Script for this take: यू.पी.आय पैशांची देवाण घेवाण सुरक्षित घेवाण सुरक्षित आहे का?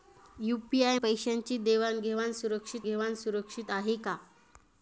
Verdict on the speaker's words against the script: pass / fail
pass